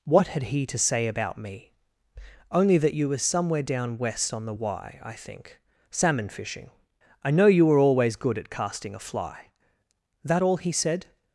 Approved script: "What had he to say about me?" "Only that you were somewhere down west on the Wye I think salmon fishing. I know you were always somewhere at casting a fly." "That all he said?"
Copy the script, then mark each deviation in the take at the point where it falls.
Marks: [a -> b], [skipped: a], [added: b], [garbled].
"What had he to say about me?" "Only that you were somewhere down west on the Wye I think salmon fishing. I know you were always [somewhere -> good] at casting a fly." "That all he said?"